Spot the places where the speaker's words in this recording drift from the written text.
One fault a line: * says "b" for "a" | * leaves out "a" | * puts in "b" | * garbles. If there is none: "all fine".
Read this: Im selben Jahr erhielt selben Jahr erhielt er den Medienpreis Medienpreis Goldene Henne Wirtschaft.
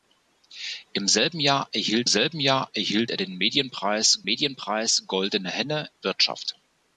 all fine